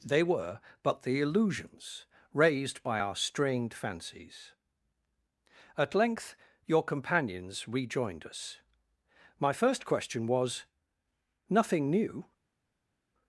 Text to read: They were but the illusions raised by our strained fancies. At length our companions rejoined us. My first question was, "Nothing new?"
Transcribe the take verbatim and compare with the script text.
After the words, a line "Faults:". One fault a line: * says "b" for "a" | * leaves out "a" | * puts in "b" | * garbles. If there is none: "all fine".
They were but the illusions raised by our strained fancies. At length your companions rejoined us. My first question was, "Nothing new?"
Faults:
* says "your" for "our"